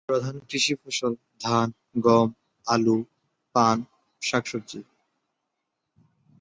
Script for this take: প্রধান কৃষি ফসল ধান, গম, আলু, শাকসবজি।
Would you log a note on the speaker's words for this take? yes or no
yes